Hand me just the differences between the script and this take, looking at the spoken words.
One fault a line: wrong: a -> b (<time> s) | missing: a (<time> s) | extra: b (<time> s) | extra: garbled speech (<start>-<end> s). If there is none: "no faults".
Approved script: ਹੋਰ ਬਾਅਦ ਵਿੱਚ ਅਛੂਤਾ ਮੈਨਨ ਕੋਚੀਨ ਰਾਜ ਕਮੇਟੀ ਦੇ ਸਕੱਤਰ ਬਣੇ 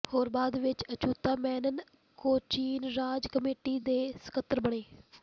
no faults